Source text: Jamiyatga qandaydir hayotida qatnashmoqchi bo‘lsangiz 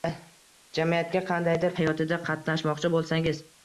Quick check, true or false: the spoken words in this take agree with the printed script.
true